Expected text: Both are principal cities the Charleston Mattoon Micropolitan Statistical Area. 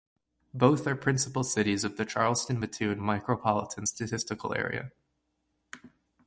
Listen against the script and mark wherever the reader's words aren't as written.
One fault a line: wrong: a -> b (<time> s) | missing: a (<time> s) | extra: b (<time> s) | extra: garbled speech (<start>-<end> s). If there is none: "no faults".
extra: of (1.8 s)